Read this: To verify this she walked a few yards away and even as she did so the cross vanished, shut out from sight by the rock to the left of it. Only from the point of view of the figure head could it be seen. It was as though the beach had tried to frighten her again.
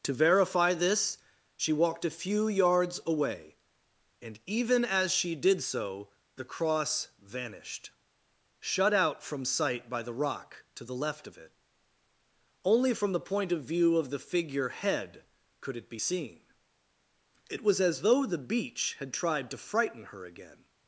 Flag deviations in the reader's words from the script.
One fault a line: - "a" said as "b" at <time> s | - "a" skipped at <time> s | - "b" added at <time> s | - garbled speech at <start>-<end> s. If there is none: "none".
none